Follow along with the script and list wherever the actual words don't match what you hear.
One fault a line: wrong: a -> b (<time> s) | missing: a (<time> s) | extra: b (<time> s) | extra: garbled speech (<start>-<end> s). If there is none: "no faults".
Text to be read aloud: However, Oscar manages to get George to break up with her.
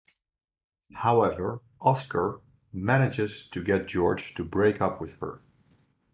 no faults